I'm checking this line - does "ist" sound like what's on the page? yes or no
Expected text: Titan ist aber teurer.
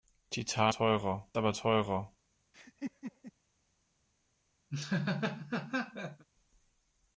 no